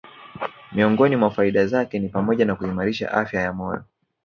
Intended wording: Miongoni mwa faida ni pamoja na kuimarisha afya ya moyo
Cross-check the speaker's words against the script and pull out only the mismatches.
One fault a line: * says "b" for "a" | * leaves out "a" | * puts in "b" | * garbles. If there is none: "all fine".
* puts in "zake"